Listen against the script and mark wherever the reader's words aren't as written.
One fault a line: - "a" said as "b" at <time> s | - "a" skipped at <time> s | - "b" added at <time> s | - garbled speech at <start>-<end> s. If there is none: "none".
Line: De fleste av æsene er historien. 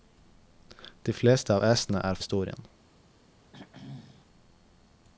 none